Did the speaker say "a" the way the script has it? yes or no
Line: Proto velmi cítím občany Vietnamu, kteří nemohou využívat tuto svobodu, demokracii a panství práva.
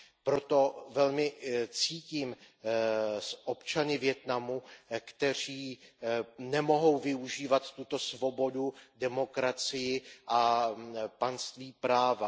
yes